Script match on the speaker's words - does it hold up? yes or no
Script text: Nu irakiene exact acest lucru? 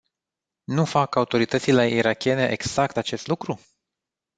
no